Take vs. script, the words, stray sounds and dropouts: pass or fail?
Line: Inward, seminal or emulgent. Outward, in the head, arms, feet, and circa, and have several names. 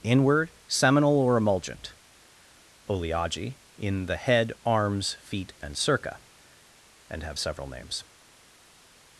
fail